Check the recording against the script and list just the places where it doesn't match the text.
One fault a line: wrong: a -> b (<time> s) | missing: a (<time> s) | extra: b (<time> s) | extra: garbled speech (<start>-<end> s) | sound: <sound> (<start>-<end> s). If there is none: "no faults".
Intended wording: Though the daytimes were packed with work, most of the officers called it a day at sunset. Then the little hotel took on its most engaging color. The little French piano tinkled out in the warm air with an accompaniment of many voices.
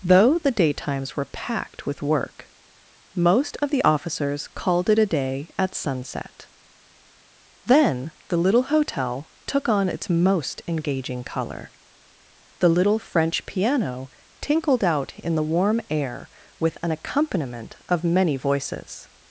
no faults